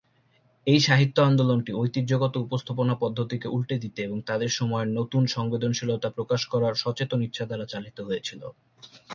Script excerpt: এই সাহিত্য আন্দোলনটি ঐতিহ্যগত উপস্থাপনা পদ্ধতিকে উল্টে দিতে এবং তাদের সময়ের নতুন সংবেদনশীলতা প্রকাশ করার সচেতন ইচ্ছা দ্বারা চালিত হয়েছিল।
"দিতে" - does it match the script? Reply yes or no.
yes